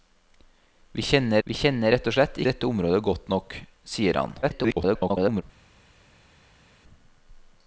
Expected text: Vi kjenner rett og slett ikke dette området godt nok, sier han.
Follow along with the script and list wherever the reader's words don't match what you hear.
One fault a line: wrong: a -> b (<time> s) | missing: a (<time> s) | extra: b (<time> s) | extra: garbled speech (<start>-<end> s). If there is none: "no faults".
extra: vi kjenner (1.4 s)
missing: ikke (2.4 s)
extra: garbled speech (4.4-5.4 s)